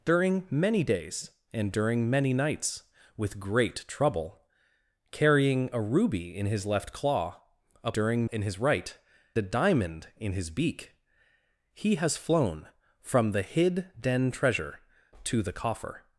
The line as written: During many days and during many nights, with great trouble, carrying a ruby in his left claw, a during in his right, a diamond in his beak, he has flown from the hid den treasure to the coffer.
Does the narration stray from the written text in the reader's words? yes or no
no